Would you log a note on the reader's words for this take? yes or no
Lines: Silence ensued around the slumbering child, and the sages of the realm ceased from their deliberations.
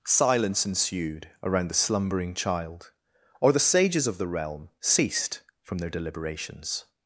yes